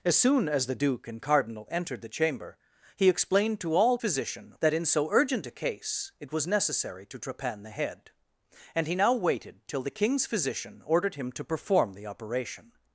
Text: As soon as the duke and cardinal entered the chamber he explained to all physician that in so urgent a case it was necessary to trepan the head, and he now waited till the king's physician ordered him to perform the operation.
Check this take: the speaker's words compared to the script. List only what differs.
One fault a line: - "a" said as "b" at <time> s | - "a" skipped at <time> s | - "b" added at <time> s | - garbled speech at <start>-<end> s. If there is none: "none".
none